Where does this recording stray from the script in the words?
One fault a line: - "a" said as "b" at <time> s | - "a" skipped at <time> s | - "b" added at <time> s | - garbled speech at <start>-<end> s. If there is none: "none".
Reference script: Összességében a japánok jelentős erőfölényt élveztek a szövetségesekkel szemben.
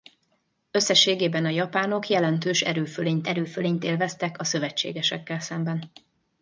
- "erőfölényt" added at 3.2 s